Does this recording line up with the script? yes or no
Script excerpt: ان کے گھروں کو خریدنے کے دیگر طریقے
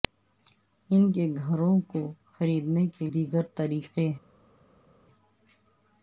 yes